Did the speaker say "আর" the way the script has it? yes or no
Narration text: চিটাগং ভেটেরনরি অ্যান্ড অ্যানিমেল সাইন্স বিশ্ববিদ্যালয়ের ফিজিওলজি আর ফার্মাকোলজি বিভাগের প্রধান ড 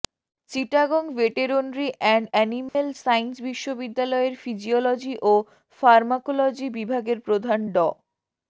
no